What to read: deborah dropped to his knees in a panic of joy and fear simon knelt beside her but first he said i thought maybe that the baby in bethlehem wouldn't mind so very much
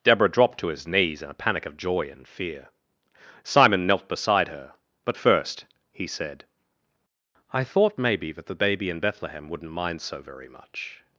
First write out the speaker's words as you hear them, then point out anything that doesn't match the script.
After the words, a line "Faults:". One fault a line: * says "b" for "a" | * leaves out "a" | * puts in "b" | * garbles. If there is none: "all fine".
deborah dropped to his knees in a panic of joy and fear simon knelt beside her but first he said i thought maybe that the baby in bethlehem wouldn't mind so very much
Faults:
all fine